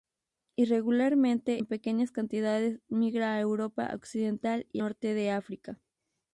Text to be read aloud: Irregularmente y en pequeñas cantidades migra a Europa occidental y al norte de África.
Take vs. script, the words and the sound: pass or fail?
fail